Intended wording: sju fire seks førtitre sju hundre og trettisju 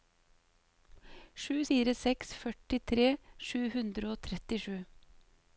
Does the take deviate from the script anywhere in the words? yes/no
no